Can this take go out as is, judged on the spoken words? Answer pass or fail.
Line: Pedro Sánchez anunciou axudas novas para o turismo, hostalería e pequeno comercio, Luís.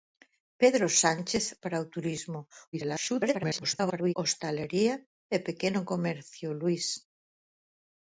fail